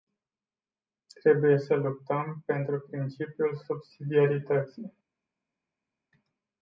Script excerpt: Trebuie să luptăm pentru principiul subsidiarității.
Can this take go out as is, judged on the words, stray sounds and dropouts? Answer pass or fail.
pass